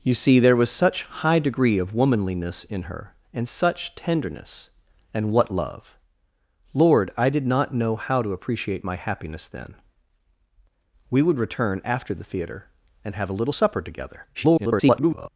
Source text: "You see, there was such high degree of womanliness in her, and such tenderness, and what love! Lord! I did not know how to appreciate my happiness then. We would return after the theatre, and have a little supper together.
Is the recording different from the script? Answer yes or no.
yes